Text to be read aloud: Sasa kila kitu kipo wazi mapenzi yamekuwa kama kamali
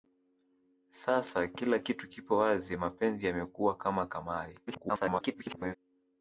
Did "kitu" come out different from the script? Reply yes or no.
no